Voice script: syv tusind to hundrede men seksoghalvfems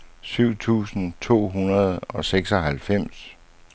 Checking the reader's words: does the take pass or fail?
fail